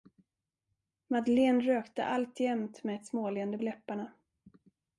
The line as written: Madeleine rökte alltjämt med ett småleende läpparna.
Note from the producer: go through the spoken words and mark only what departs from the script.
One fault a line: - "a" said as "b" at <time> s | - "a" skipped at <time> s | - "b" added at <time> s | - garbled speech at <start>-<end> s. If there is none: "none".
none